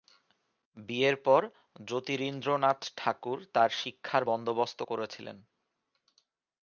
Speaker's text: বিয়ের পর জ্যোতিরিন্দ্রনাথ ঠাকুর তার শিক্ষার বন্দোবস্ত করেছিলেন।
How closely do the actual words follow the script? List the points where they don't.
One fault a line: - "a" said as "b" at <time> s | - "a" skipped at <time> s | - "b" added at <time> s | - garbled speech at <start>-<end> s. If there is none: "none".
none